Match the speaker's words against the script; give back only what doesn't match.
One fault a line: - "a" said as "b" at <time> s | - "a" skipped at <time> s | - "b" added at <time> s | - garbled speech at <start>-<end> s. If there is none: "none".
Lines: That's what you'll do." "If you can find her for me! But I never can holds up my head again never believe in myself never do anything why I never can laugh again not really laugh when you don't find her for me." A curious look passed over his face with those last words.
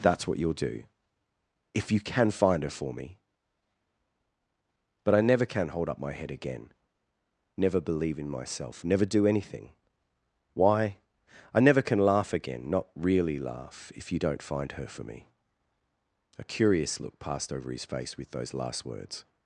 - "holds" said as "hold" at 5.7 s
- "when" said as "if" at 13.9 s